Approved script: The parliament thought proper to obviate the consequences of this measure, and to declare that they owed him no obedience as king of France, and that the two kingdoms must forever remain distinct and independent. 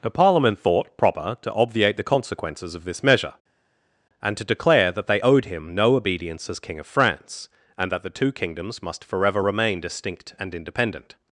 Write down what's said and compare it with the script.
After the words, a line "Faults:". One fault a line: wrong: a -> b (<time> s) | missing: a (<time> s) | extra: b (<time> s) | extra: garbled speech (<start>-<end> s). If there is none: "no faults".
The parliament thought proper to obviate the consequences of this measure, and to declare that they owed him no obedience as king of France, and that the two kingdoms must forever remain distinct and independent.
Faults:
no faults